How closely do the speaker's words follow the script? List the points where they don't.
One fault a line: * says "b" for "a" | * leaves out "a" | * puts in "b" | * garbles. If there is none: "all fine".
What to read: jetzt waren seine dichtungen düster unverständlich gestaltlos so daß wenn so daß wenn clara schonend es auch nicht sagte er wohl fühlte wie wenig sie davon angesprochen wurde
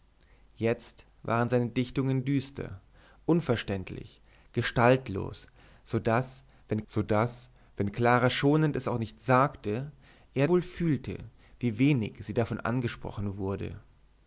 all fine